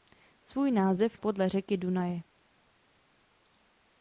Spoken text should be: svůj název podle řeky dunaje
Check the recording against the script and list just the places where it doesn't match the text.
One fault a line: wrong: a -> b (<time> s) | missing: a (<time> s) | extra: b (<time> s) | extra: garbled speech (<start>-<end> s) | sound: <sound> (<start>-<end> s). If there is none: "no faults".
no faults